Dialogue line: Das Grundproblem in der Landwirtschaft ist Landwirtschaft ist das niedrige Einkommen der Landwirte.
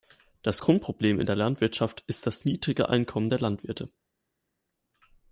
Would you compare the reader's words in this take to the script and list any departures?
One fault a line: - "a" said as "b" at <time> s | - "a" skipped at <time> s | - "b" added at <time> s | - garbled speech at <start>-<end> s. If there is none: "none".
- "Landwirtschaft ist" skipped at 2.3 s